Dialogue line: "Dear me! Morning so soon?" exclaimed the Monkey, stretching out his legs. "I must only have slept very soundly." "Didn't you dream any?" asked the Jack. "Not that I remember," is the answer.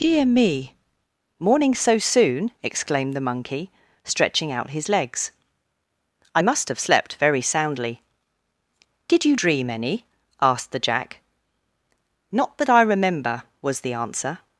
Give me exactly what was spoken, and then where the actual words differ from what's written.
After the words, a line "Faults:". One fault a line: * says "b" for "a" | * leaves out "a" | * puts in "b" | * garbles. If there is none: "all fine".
"Dear me! Morning so soon?" exclaimed the Monkey, stretching out his legs. "I must have slept very soundly." "Did you dream any?" asked the Jack. "Not that I remember," was the answer.
Faults:
* leaves out "only"
* says "Did" for "Didn't"
* says "was" for "is"